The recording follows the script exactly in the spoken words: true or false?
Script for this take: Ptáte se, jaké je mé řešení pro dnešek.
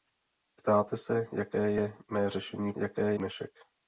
false